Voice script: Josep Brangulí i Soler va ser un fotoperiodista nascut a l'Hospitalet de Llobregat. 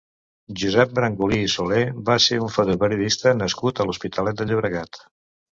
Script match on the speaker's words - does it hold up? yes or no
yes